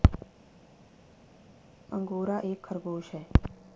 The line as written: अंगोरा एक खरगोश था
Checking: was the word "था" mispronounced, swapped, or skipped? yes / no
yes